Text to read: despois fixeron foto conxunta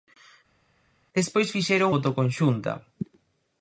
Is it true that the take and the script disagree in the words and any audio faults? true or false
false